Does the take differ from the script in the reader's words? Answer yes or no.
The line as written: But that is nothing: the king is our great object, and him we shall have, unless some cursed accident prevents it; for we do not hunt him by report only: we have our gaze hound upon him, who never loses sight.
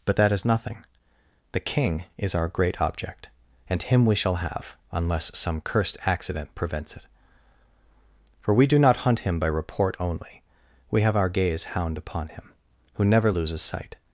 no